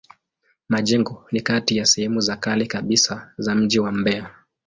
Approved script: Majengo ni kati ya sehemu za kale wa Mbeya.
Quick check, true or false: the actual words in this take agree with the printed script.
false